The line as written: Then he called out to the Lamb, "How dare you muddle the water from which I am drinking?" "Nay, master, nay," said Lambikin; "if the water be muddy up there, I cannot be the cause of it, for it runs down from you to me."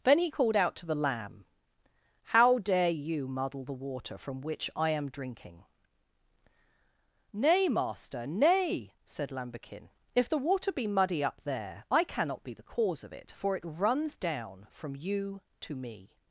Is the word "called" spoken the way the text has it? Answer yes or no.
yes